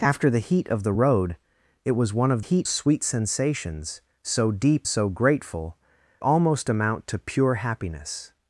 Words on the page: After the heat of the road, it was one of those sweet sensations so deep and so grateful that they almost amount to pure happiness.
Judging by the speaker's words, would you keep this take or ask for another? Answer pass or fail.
fail